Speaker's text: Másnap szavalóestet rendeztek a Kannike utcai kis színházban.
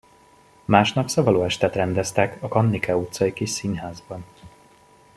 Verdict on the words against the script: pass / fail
pass